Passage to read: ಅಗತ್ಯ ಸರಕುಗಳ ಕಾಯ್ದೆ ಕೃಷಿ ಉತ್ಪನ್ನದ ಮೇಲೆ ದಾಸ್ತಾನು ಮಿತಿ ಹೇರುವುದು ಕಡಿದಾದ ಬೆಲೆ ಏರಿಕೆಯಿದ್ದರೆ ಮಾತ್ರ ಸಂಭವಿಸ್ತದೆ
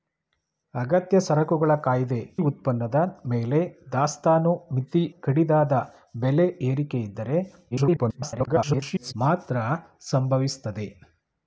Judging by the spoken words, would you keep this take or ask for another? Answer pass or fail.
fail